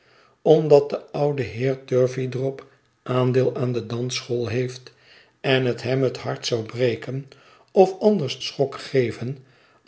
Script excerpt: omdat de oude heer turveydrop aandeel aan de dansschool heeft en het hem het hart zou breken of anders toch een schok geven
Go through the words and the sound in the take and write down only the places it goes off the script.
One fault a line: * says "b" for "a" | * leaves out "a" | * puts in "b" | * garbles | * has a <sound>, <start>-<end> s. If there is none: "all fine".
* leaves out "toch een"